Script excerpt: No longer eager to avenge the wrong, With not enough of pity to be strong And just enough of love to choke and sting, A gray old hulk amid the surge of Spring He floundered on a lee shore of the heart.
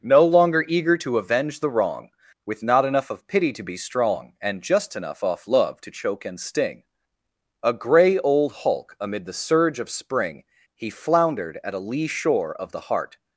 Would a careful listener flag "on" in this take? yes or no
yes